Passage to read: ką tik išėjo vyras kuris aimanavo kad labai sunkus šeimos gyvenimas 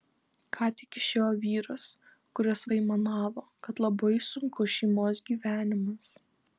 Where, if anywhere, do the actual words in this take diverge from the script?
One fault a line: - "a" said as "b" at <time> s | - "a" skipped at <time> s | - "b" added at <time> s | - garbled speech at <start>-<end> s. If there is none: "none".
none